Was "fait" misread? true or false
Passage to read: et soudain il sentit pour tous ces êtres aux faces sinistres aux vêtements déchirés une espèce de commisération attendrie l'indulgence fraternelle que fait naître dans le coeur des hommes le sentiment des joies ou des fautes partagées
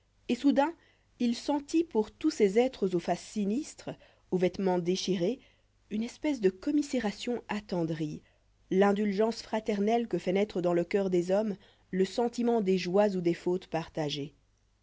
false